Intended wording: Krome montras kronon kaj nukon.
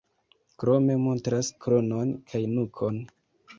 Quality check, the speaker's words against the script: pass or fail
pass